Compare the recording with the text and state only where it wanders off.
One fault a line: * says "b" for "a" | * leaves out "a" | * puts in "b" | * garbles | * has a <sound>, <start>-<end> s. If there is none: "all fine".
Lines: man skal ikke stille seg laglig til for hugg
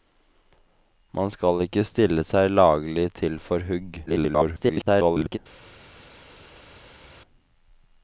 * garbles